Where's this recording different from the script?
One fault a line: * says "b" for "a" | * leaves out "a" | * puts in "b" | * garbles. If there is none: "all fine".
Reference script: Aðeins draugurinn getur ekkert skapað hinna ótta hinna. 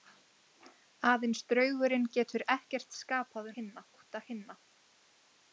all fine